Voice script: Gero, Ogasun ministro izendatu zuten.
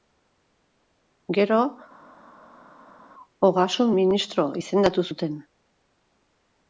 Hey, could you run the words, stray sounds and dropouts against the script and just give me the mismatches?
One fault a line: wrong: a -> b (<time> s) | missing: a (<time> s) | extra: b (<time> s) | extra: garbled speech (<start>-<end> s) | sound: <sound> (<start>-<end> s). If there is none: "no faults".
no faults